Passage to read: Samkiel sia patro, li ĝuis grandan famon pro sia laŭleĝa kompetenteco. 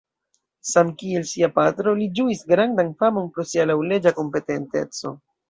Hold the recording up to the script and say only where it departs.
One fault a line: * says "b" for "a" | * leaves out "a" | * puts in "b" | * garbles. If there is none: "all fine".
all fine